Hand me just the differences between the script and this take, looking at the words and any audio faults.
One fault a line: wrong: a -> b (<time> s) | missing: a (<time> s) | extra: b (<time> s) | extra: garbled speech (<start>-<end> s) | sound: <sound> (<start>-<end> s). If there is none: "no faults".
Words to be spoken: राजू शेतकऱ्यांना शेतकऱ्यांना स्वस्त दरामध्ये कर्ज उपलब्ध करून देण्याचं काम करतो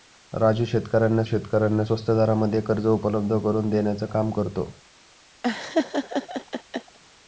sound: laugh (5.4-7.0 s)